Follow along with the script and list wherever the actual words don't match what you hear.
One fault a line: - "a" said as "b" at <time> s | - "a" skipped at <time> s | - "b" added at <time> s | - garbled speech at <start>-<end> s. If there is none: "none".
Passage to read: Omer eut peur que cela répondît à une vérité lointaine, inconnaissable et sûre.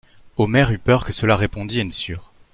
- "vérité lointaine inconnaissable" skipped at 1.9 s